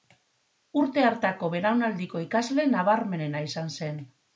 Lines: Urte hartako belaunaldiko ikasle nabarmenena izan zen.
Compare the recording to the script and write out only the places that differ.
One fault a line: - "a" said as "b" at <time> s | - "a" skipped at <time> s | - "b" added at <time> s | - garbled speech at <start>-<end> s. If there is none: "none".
none